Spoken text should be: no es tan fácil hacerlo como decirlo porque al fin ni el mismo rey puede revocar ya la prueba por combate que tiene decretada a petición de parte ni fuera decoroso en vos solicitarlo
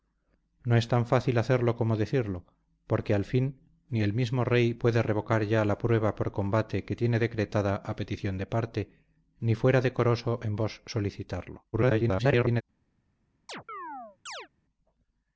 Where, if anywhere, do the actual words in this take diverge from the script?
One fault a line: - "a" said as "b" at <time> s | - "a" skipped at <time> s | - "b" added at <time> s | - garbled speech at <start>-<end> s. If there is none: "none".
- garbled speech at 11.7-12.6 s